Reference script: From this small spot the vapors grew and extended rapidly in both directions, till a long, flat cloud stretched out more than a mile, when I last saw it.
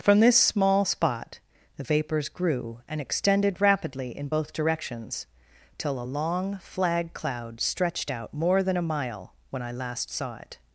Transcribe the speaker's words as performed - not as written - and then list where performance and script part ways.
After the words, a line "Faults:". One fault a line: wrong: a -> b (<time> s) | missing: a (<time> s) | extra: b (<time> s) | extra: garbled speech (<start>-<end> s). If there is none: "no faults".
From this small spot the vapors grew and extended rapidly in both directions, till a long, flag cloud stretched out more than a mile, when I last saw it.
Faults:
wrong: flat -> flag (6.6 s)